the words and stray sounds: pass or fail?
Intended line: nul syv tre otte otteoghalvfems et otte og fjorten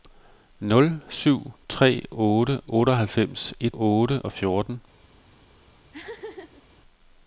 fail